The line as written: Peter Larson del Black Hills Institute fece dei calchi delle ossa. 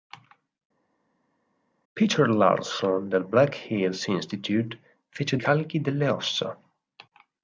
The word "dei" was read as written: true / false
false